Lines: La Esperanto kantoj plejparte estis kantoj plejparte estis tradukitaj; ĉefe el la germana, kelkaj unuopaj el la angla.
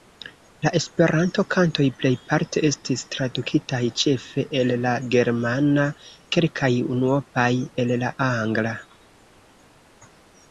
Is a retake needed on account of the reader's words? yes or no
yes